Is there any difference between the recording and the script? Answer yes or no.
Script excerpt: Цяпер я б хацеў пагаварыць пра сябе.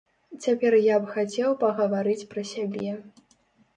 no